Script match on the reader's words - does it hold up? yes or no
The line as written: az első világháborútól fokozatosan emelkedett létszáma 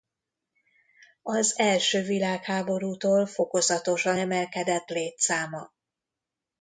yes